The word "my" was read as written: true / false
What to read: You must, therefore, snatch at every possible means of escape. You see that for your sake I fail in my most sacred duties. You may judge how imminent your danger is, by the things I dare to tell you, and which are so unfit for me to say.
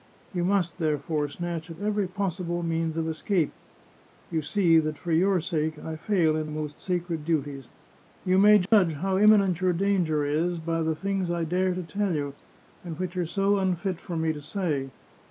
false